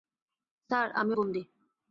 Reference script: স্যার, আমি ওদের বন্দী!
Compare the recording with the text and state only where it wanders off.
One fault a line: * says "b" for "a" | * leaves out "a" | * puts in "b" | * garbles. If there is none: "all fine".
* leaves out "ওদের"